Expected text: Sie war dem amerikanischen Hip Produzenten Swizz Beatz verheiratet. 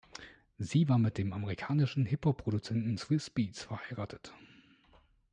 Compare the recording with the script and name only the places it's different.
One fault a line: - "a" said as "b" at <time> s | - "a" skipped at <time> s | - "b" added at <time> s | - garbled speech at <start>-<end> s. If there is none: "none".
- "mit" added at 1.0 s
- "Hop" added at 2.2 s